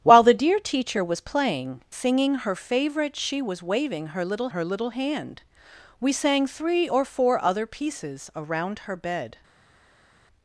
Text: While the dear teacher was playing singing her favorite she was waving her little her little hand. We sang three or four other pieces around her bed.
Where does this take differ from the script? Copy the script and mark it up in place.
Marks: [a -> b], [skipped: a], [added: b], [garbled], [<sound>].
While the dear teacher was playing singing her favorite she was waving her little her little hand. We sang three or four other pieces around her bed.